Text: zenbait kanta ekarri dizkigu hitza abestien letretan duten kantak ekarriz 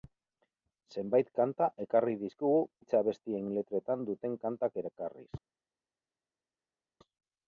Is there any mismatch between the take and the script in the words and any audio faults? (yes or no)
no